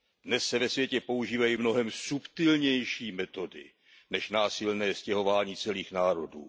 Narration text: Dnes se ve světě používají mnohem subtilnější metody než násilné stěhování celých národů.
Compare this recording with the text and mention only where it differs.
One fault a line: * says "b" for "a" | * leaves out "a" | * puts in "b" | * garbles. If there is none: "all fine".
all fine